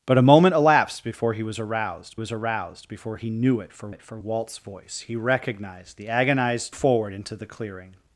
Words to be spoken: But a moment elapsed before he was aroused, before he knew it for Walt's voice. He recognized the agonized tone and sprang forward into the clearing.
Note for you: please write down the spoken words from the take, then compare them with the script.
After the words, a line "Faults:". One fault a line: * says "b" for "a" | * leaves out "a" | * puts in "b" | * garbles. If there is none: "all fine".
But a moment elapsed before he was aroused was aroused, before he knew it for it for Walt's voice. He recognized the agonized forward into the clearing.
Faults:
* puts in "was aroused"
* puts in "it for"
* leaves out "tone and sprang"